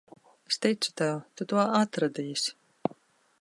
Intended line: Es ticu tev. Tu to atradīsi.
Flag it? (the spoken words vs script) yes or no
no